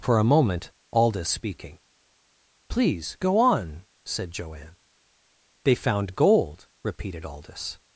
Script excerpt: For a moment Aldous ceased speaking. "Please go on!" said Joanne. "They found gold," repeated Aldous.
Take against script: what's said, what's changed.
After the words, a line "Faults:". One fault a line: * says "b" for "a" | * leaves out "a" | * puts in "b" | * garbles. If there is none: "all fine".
For a moment Aldous speaking. "Please go on!" said Joanne. "They found gold," repeated Aldous.
Faults:
* leaves out "ceased"